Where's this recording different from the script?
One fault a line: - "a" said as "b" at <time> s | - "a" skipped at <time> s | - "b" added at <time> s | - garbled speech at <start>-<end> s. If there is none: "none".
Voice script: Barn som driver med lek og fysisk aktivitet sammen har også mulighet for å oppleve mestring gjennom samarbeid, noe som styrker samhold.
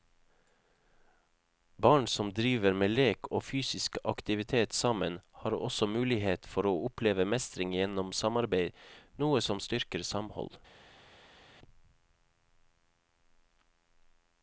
none